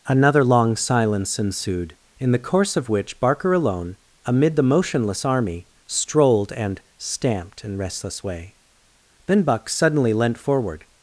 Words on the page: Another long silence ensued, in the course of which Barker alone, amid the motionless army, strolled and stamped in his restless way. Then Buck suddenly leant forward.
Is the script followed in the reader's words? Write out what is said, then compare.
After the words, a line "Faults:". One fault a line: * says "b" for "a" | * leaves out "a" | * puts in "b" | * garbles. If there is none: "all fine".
Another long silence ensued, in the course of which Barker alone, amid the motionless army, strolled and stamped in restless way. Then Buck suddenly leant forward.
Faults:
* leaves out "his"